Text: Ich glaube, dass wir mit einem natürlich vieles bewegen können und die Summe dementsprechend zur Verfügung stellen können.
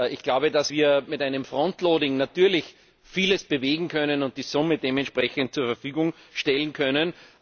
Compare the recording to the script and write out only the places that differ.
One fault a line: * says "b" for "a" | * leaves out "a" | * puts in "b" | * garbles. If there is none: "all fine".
all fine